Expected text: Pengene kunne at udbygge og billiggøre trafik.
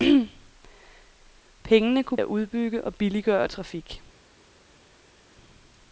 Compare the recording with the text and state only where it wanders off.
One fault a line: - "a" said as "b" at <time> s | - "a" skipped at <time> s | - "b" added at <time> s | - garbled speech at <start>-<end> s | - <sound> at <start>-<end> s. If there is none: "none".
none